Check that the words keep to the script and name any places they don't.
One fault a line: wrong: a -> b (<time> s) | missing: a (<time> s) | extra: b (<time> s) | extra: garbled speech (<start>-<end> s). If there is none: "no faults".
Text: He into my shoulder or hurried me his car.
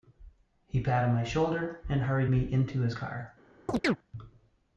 wrong: into -> patted (0.8 s)
wrong: or -> and (1.9 s)
extra: into (2.4 s)